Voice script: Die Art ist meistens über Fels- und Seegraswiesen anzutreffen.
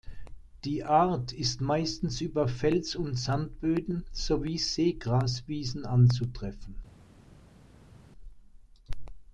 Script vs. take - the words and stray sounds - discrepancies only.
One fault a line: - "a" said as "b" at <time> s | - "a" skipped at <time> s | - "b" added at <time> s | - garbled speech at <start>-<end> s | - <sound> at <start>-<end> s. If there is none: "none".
- "Sandböden sowie" added at 3.2 s